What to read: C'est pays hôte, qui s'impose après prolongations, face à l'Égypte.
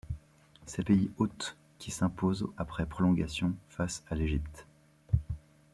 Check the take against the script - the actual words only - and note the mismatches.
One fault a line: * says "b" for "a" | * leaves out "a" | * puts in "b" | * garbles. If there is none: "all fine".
all fine